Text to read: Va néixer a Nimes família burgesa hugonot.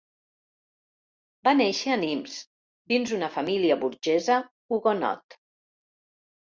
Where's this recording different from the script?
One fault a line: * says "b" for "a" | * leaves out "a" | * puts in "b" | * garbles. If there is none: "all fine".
* puts in "dins una"